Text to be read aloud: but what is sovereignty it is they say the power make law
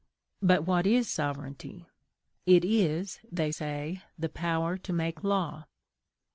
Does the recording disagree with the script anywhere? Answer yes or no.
yes